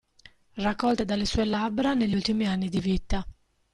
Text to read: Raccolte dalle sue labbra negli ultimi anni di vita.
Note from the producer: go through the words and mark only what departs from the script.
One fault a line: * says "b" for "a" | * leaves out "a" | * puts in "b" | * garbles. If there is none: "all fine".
all fine